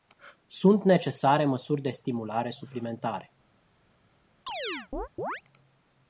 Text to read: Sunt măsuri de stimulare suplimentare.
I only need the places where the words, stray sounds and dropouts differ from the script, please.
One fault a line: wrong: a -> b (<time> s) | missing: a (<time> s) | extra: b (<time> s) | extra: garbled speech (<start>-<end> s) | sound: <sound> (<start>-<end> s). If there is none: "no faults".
extra: necesare (0.8 s)
sound: chirp (4.5-5.4 s)